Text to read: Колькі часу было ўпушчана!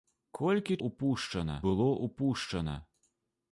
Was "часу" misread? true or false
true